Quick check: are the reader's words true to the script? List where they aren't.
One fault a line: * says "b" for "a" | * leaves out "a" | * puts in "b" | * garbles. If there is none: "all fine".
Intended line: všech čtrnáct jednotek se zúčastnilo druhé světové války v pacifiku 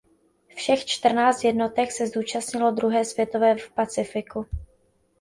* leaves out "války"